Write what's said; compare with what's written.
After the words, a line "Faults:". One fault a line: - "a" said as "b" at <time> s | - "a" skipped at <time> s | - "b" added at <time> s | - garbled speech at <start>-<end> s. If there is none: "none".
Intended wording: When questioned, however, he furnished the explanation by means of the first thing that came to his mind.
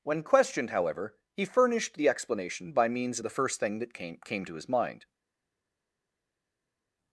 When questioned, however, he furnished the explanation by means of the first thing that came came to his mind.
Faults:
- "came" added at 4.2 s